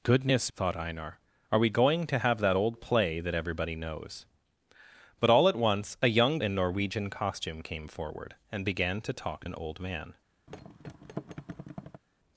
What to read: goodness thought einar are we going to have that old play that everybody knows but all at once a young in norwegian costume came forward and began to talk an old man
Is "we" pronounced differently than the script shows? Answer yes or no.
no